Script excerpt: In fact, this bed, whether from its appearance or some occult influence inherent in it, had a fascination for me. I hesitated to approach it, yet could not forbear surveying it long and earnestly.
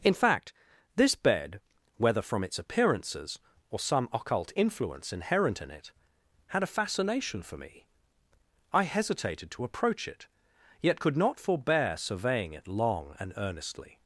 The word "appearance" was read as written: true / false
false